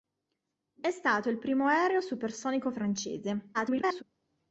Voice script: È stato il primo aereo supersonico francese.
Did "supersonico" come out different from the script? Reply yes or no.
no